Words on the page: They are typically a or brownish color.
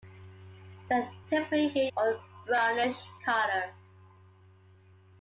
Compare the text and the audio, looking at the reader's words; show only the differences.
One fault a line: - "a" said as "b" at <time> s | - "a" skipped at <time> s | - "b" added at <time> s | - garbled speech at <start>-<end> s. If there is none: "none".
none